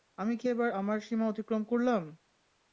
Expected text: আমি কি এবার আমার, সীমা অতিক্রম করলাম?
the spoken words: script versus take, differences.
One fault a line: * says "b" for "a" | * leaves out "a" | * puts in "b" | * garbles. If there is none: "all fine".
all fine